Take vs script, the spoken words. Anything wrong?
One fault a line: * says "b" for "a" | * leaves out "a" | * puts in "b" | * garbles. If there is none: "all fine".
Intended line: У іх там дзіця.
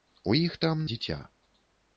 all fine